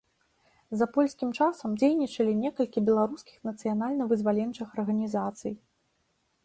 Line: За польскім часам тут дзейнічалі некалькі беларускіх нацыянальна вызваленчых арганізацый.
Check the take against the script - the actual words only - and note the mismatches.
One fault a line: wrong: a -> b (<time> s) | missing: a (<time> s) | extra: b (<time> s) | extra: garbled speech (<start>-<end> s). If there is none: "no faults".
missing: тут (1.7 s)